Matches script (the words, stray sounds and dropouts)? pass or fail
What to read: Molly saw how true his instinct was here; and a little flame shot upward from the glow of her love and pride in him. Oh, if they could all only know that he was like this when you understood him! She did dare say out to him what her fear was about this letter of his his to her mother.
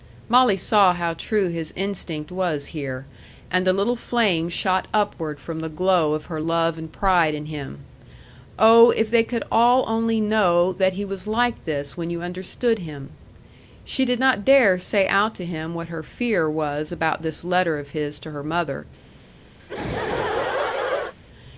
fail